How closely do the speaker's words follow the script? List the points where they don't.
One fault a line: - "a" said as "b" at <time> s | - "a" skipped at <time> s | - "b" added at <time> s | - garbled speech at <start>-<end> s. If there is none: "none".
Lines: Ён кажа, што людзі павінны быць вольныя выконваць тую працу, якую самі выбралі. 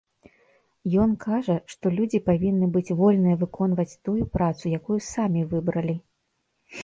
none